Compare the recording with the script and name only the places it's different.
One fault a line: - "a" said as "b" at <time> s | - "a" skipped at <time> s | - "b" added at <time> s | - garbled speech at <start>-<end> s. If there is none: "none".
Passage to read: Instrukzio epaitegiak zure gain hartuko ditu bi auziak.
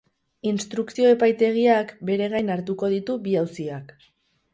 - "zure" said as "bere" at 2.1 s